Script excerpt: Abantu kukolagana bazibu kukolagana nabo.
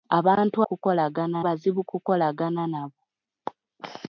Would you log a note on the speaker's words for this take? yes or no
no